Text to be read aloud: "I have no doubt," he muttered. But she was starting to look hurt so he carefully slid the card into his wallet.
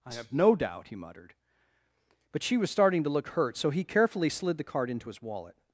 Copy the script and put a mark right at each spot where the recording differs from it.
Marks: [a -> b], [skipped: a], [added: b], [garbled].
"I have no doubt," he muttered. But she was starting to look hurt so he carefully slid the card into his wallet.